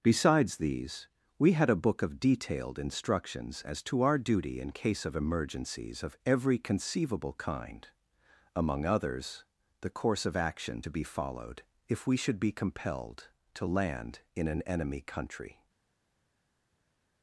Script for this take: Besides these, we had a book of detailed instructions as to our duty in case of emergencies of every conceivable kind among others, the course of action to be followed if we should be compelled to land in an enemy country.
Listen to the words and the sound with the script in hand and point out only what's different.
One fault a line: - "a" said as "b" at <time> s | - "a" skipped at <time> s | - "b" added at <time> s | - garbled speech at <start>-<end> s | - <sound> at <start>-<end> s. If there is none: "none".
none